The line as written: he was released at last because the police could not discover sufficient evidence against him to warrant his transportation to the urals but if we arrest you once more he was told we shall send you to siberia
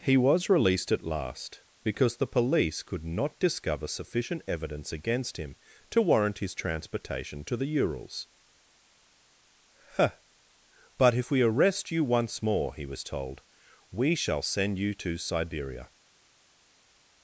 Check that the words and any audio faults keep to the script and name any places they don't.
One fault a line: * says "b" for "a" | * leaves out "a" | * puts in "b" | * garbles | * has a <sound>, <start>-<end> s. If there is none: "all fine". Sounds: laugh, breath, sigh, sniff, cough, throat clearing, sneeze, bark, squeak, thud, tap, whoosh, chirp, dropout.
* puts in "huh"